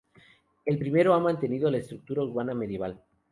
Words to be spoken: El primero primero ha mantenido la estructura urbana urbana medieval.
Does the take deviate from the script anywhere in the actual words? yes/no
yes